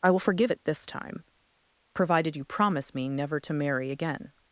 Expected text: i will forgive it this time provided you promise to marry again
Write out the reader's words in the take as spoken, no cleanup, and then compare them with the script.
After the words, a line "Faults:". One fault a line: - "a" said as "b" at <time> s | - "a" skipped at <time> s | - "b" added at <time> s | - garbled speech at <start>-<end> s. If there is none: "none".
i will forgive it this time provided you promise me never to marry again
Faults:
- "me never" added at 2.9 s